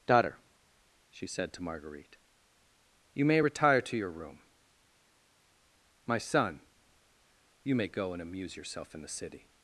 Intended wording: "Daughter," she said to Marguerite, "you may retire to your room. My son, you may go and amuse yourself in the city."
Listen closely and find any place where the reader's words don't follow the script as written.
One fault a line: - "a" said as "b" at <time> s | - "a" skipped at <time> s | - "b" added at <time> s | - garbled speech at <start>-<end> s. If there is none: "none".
none